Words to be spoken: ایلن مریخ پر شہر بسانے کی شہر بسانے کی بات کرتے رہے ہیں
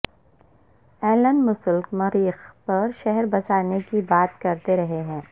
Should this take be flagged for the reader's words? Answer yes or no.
yes